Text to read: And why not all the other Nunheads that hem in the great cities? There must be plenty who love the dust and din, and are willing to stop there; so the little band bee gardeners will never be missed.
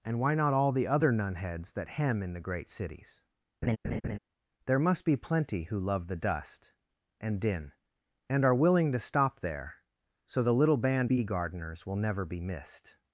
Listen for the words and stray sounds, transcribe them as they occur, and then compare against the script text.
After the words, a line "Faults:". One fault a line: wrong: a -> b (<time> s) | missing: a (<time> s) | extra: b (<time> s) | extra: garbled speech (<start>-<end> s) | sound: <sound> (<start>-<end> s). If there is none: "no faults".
And why not all the other Nunheads that hem in the great cities? There must be plenty who love the dust and din, and are willing to stop there; so the little band bee gardeners will never be missed.
Faults:
sound: laugh (3.6-4.2 s)